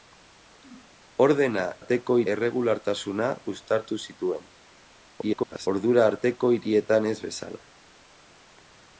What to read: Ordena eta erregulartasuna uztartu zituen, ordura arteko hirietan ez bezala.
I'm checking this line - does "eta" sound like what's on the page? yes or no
no